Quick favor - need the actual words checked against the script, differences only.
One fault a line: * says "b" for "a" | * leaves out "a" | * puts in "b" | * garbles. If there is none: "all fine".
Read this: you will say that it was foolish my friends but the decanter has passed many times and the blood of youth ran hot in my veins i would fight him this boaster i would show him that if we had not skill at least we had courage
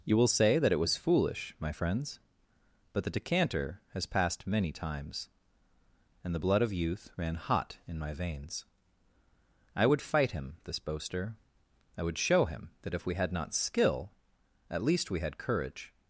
all fine